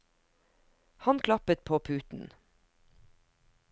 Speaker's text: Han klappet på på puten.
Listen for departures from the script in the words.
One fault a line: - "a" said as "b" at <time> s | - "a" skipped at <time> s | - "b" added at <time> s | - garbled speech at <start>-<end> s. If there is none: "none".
- "på" skipped at 1.8 s